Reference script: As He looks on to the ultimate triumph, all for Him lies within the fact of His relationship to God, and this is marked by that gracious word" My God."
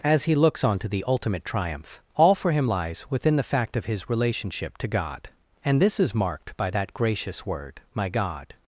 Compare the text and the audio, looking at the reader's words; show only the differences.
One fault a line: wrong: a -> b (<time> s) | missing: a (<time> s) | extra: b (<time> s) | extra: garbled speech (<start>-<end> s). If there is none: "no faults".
no faults